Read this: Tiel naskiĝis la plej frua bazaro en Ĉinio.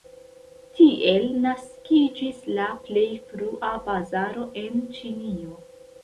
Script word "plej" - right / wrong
right